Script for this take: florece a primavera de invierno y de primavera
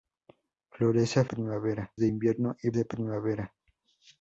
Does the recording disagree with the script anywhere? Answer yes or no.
no